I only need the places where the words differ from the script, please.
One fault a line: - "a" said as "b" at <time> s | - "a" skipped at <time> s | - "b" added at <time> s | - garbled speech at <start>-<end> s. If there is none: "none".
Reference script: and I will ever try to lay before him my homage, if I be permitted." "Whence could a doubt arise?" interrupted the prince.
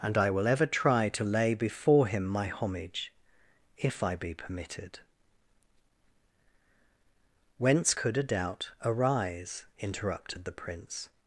none